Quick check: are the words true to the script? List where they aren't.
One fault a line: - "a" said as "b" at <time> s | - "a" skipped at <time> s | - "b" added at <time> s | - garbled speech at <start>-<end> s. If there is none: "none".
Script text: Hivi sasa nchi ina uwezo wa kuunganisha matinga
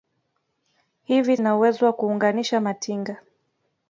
- "sasa nchi" skipped at 1.4 s